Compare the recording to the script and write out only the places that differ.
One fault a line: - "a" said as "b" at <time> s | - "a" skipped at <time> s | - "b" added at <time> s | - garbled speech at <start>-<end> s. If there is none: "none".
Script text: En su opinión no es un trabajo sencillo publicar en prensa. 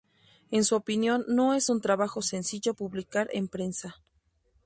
none